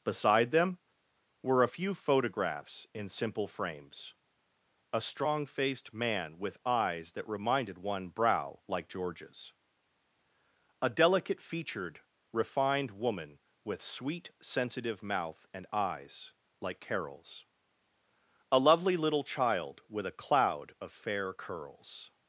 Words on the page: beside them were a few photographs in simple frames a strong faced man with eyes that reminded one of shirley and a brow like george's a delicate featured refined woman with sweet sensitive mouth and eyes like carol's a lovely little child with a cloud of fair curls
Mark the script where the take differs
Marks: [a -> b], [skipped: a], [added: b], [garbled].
beside them were a few photographs in simple frames a strong faced man with eyes that reminded one [skipped: of shirley and a] brow like george's a delicate featured refined woman with sweet sensitive mouth and eyes like carol's a lovely little child with a cloud of fair curls